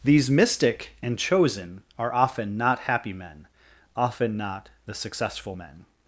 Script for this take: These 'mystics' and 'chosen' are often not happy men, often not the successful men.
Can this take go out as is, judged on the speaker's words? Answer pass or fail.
fail